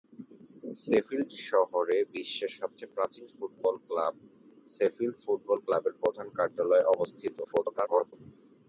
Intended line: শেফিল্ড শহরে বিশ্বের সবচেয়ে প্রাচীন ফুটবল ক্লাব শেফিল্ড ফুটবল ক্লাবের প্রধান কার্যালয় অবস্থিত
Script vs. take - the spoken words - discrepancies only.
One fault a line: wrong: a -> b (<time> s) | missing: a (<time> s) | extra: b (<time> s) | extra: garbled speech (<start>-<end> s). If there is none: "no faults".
extra: garbled speech (7.4-8.1 s)